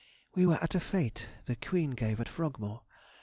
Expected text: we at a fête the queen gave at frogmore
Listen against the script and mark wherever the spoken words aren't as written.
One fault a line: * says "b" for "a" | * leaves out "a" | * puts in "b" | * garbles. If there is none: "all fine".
* puts in "were"